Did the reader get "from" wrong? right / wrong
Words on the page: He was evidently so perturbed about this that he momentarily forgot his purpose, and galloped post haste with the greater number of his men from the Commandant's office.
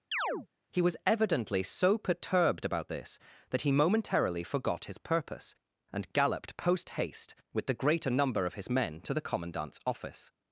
wrong